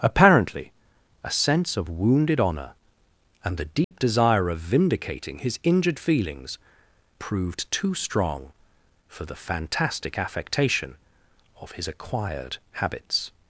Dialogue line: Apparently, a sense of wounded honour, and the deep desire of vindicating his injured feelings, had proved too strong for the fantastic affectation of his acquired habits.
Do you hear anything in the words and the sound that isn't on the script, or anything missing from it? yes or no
yes